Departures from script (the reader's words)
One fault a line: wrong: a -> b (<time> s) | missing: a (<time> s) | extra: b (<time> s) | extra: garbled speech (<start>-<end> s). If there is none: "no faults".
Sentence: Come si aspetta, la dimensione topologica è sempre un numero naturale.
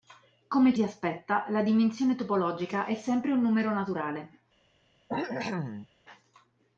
no faults